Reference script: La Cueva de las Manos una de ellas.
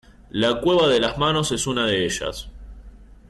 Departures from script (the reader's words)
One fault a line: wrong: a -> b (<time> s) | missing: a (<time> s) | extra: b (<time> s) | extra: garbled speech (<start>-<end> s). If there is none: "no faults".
extra: es (1.5 s)